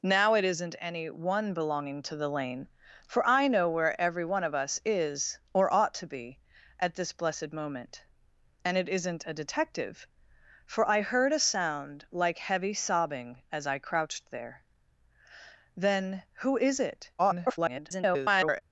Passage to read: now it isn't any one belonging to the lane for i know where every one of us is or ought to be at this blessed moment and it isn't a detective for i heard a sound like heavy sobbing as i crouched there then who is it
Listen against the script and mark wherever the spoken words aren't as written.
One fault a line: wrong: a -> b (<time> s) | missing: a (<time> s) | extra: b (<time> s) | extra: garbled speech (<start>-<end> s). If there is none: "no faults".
extra: garbled speech (17.2-18.6 s)